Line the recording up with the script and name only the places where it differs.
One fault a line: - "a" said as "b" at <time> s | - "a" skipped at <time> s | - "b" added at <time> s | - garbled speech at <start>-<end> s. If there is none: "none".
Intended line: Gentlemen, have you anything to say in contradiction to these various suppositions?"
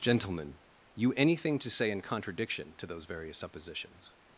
- "have" skipped at 0.6 s
- "these" said as "those" at 2.9 s